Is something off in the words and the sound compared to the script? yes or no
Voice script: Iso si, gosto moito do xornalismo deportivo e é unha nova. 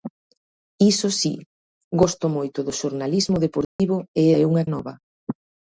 yes